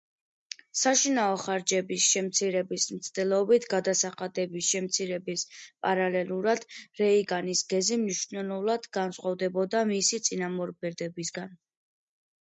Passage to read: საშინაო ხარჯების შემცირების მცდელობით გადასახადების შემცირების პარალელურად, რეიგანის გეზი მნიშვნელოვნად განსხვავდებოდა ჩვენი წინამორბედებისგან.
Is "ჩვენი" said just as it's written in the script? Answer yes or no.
no